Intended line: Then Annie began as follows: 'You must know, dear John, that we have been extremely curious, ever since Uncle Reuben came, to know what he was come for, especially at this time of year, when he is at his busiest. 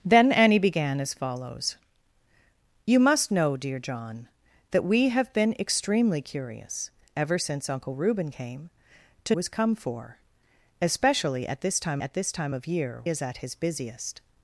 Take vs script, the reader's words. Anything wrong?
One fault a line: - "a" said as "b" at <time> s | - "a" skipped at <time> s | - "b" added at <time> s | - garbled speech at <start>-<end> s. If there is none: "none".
- "know what he" skipped at 9.3 s
- "at this time" added at 12.0 s
- "when he" skipped at 13.0 s